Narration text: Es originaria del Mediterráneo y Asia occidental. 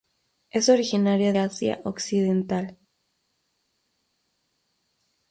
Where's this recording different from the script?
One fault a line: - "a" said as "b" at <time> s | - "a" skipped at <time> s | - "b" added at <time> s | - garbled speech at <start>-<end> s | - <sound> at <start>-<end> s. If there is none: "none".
- "del Mediterráneo y" skipped at 1.4 s